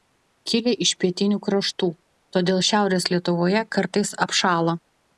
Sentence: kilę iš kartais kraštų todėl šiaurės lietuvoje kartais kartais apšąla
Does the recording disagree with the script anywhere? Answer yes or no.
yes